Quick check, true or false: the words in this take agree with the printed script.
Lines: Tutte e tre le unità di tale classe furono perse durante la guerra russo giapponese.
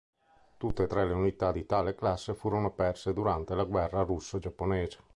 true